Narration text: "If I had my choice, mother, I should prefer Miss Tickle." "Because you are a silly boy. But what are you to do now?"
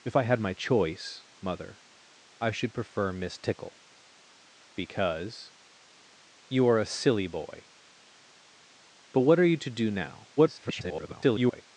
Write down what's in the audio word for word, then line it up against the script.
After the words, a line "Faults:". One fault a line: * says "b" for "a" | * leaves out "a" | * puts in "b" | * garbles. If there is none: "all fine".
"If I had my choice, mother, I should prefer Miss Tickle." "Because you are a silly boy. But what are you to do now?" [garbled]
Faults:
* garbles